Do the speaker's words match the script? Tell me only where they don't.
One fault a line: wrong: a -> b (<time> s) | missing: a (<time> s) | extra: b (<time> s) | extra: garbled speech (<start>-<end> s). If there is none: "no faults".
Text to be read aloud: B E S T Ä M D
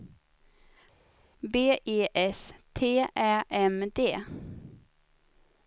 no faults